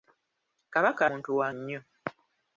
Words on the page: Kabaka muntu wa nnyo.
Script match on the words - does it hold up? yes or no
yes